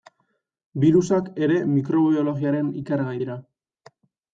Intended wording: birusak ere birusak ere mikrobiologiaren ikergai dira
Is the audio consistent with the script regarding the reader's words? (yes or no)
no